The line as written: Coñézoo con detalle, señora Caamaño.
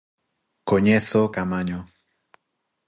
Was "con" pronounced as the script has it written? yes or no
no